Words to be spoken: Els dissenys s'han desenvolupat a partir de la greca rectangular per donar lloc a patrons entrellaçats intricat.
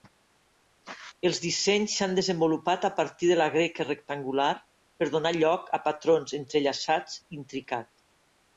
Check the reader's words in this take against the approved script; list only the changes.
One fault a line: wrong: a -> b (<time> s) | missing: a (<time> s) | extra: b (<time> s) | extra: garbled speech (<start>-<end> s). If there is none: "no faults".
no faults